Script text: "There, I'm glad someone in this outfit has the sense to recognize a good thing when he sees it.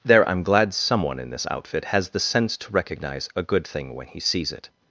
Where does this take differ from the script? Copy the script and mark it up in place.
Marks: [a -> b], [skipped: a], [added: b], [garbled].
"There, I'm glad someone in this outfit has the sense to recognize a good thing when he sees it.